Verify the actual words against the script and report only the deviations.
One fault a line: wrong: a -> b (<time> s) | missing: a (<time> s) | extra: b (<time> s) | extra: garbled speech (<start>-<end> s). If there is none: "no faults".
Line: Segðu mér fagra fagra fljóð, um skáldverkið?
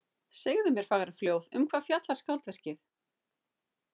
missing: fagra (1.1 s)
extra: hvað fjallar (1.7 s)